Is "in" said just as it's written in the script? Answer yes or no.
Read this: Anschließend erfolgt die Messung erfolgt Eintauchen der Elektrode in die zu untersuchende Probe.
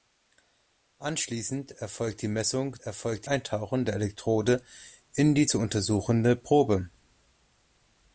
yes